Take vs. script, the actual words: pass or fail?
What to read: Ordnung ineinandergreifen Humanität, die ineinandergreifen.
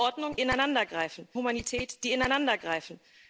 pass